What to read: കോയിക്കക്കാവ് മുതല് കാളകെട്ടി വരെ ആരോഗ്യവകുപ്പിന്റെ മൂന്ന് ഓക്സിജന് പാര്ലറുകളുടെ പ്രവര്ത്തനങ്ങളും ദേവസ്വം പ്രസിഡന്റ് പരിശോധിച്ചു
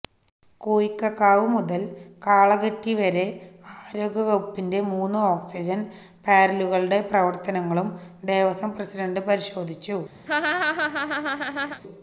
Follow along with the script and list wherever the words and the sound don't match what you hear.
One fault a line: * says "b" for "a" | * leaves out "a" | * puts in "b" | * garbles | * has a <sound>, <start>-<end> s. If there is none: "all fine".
* has a laugh, 10.3-11.8 s